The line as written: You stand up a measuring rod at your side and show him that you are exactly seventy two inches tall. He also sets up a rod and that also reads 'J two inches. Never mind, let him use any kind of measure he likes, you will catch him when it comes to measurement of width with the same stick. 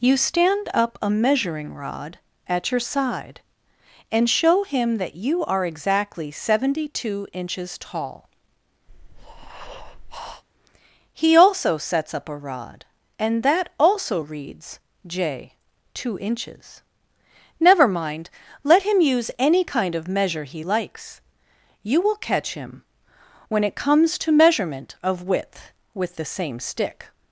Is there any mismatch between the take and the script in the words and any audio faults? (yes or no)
yes